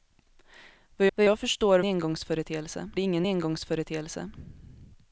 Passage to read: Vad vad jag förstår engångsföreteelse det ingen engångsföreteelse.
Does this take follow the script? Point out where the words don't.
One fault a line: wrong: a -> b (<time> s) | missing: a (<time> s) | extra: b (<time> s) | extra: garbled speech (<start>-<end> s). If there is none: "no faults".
no faults